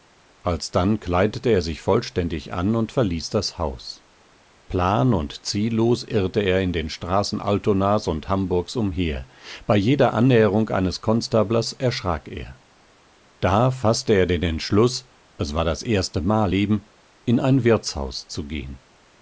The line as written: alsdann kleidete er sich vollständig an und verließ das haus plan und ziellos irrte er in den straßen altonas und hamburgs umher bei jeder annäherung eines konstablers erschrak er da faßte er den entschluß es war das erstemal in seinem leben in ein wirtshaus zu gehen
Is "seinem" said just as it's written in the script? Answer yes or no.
no